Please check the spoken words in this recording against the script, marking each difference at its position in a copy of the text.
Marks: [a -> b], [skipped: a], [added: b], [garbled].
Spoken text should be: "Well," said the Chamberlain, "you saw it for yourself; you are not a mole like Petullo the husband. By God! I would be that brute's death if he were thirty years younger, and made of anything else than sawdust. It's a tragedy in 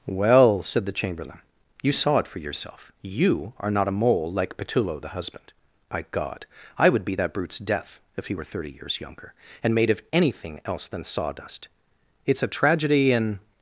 "Well," said the Chamberlain, "you saw it for yourself; you are not a mole like Petullo the husband. By God! I would be that brute's death if he were thirty years younger, and made of anything else than sawdust. It's a tragedy in